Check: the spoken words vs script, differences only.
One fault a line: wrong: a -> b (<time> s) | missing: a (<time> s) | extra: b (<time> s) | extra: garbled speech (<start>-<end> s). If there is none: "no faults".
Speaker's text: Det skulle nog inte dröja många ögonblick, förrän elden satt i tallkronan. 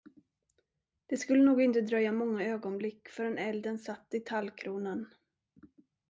no faults